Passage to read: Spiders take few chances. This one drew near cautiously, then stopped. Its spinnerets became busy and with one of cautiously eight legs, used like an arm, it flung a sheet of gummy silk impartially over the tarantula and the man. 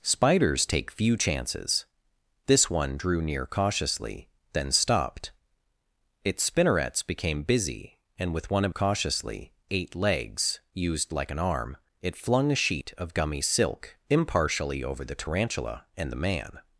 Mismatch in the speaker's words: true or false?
false